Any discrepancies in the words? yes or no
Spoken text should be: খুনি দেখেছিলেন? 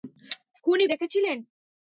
no